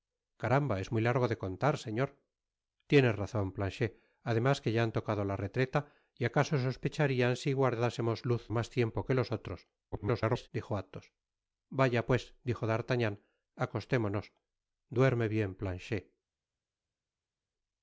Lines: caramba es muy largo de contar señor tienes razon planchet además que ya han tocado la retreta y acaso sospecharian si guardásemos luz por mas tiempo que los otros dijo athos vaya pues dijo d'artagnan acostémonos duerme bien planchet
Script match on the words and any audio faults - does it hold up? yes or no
no